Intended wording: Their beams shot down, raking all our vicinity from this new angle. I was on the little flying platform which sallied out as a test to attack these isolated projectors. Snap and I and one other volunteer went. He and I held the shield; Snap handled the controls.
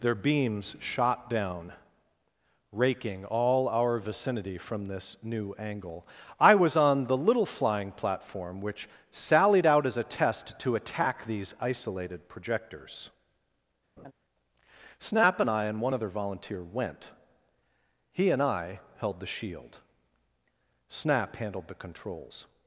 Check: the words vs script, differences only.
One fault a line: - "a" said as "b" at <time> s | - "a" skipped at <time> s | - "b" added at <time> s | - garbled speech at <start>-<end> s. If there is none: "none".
none